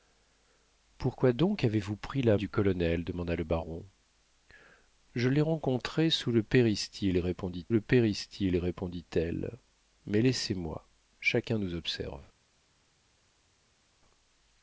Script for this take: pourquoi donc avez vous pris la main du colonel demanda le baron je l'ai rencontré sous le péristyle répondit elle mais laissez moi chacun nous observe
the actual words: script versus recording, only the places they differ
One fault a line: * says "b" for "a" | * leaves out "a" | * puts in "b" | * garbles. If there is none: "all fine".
* leaves out "main"
* puts in "le péristyle répondit"